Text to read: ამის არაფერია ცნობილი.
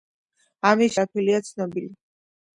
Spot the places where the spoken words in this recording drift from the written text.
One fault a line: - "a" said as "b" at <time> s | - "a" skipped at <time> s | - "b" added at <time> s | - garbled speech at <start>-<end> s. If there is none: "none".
none